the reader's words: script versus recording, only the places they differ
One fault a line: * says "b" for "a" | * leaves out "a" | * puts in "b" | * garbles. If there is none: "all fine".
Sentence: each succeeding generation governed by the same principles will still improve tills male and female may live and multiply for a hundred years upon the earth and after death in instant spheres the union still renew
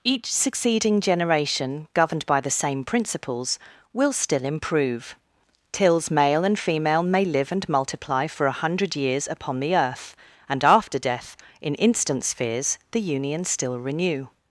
all fine